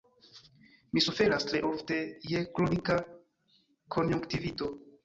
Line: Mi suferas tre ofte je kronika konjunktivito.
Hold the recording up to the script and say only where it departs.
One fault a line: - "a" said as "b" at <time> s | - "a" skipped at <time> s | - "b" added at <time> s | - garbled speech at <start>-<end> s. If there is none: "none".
none